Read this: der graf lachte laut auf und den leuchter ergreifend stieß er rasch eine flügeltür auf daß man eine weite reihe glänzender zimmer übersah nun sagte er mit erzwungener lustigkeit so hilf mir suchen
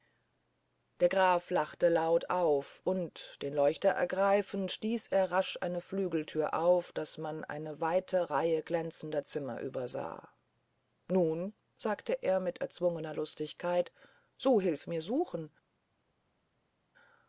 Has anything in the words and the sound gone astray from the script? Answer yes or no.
no